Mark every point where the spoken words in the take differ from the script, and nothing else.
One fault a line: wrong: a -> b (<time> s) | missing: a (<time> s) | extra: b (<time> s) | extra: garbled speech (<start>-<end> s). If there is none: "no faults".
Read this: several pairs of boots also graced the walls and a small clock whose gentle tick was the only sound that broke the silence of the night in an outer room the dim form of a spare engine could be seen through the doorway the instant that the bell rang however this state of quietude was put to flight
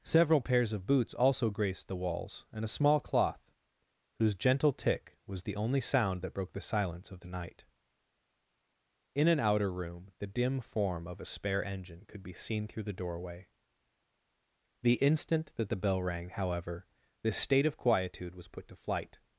wrong: clock -> cloth (3.0 s)